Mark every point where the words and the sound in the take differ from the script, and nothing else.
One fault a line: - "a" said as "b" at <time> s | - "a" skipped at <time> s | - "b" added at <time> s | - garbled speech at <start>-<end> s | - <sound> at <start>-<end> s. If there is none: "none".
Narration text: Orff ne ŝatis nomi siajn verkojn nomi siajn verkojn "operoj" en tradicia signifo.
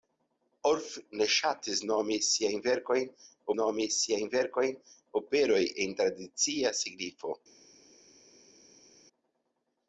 none